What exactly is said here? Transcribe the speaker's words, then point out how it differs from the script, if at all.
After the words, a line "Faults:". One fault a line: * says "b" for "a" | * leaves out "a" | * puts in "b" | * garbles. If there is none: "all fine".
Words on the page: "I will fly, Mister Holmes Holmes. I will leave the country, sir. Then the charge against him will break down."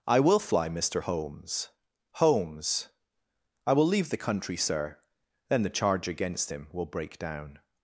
"I will fly, Mister Holmes Holmes. I will leave the country, sir. Then the charge against him will break down."
Faults:
all fine